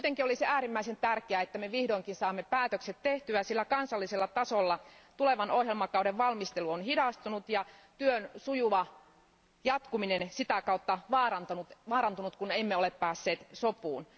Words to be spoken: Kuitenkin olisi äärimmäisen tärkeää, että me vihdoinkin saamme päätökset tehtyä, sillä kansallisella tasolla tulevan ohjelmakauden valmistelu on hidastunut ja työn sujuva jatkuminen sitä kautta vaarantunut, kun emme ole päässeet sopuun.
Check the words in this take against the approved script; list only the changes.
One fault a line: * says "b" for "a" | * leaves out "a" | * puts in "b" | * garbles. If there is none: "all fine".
all fine